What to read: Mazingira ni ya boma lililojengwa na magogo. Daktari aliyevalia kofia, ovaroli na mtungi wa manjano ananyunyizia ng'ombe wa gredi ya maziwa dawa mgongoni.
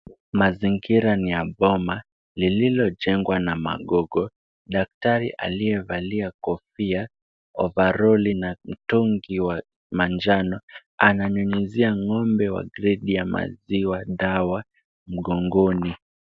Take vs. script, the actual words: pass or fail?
pass